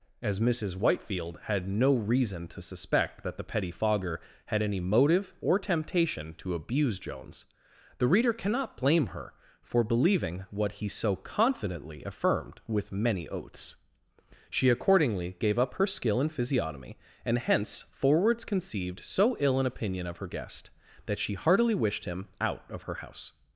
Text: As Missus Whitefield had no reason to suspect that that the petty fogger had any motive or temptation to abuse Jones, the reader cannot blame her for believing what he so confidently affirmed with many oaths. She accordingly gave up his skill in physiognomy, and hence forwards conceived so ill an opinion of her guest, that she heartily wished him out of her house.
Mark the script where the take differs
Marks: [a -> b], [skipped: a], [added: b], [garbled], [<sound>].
As Missus Whitefield had no reason to suspect that [skipped: that] the petty fogger had any motive or temptation to abuse Jones, the reader cannot blame her for believing what he so confidently affirmed with many oaths. She accordingly gave up [his -> her] skill in physiognomy, and hence forwards conceived so ill an opinion of her guest, that she heartily wished him out of her house.